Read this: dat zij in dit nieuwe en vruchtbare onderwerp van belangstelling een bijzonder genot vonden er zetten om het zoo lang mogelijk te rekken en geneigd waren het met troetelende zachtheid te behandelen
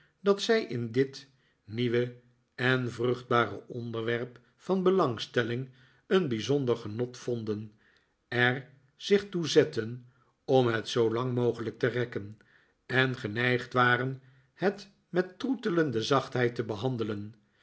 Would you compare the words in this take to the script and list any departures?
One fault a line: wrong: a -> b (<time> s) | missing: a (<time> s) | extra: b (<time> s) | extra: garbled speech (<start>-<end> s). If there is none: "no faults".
extra: zich toe (8.9 s)